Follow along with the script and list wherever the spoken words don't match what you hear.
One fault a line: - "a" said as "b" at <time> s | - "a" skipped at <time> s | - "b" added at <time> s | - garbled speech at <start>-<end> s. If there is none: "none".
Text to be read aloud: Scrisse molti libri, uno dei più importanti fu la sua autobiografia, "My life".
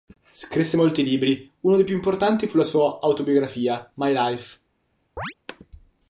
none